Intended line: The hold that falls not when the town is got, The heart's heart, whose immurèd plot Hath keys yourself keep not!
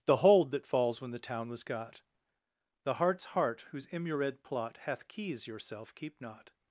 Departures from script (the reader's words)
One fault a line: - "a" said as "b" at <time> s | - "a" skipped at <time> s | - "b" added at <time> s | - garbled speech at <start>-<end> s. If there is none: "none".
- "not" skipped at 1.0 s
- "is" said as "was" at 1.5 s